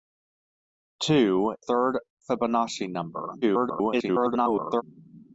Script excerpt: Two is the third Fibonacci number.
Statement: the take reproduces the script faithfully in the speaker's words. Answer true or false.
false